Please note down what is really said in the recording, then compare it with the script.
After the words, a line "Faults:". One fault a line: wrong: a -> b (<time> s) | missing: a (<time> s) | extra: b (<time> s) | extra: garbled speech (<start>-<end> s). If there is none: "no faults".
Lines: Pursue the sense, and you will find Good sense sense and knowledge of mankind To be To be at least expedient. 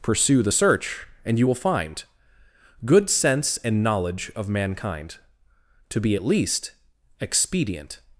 Pursue the search, and you will find Good sense and knowledge of mankind To be at least expedient.
Faults:
wrong: sense -> search (0.5 s)
missing: sense (3.6 s)
missing: To be (6.2 s)